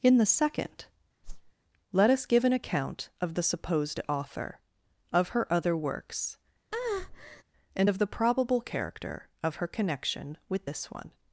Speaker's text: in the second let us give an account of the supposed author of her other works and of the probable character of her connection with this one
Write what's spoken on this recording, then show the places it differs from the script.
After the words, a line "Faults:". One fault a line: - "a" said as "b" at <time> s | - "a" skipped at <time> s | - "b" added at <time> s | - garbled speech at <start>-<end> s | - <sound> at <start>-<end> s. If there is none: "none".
in the second let us give an account of the supposed author of her other works and of the probable character of her connection with this one
Faults:
- whoosh at 1.2-1.5 s
- breath at 6.7-7.4 s